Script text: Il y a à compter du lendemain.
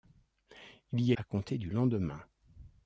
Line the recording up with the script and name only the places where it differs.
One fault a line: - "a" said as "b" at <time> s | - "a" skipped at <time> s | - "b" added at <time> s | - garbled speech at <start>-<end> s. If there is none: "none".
none